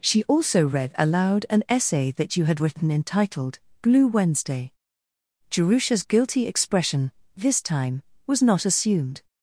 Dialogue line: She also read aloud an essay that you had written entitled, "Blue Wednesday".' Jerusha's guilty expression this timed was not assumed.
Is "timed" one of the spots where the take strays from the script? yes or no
yes